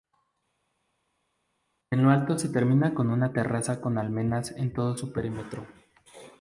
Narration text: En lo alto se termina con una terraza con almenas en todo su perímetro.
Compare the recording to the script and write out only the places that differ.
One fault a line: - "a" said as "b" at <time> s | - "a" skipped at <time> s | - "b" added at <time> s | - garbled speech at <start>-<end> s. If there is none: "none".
none